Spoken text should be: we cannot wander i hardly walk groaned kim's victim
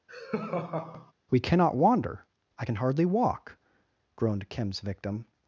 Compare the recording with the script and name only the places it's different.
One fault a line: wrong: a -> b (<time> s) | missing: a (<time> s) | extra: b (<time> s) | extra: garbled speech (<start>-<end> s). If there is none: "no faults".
extra: can (2.6 s)